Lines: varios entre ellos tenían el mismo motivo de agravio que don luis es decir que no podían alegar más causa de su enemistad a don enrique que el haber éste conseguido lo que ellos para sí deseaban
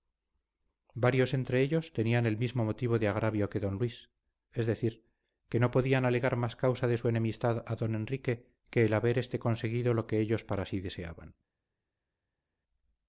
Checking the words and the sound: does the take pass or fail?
pass